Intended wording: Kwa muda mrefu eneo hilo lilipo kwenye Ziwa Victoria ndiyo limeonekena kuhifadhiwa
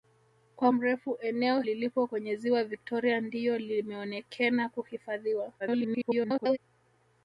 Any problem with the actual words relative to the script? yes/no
yes